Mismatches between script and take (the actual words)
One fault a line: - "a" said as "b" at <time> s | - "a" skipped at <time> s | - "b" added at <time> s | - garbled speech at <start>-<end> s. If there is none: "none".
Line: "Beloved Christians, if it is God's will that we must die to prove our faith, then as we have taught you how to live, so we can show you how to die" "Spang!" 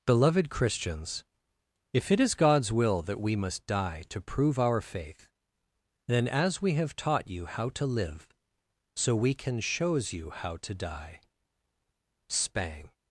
- "show" said as "shows" at 9.6 s